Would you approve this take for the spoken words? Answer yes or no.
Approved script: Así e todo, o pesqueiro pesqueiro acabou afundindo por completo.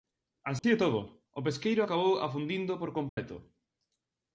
no